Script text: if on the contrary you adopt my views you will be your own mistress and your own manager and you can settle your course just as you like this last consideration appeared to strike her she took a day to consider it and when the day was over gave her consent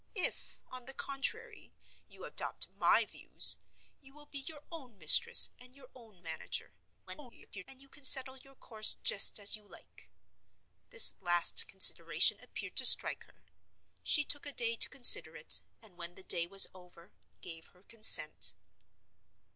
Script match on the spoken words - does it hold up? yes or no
no